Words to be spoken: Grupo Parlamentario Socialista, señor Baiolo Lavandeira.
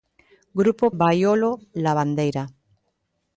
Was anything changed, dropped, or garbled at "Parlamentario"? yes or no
yes